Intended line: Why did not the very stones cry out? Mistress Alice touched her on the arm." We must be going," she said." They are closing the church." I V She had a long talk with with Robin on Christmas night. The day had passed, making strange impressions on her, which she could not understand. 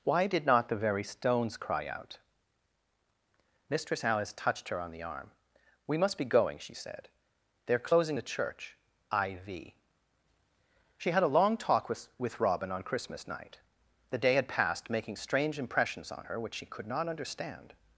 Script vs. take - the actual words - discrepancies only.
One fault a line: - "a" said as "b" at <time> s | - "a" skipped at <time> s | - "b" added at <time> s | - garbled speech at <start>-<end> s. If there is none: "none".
none